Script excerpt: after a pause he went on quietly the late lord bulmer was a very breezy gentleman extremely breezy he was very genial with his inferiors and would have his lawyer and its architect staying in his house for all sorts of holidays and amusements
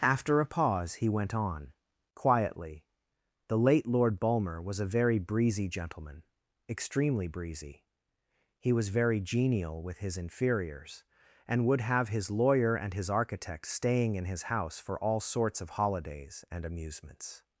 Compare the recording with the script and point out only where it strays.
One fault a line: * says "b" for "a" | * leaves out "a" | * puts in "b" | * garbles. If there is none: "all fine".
* says "his" for "its"